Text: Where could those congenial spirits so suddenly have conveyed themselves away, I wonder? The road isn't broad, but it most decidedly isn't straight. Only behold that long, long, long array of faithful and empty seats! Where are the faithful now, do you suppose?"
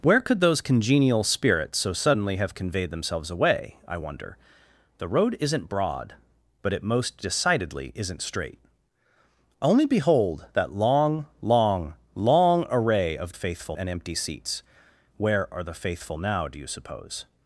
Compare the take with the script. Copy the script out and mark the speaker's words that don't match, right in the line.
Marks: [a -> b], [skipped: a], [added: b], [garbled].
Where could those congenial spirits so suddenly have conveyed themselves away, I wonder? The road isn't broad, but it most decidedly isn't straight. Only behold that long, long, long array of faithful and empty seats! Where are the faithful now, do you suppose?"